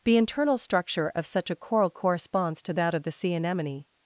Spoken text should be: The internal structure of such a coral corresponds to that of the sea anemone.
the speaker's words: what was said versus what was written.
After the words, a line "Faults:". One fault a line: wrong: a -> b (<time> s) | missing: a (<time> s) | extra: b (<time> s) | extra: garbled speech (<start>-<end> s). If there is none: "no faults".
The internal structure of such a coral corresponds to that of the sea anemone.
Faults:
no faults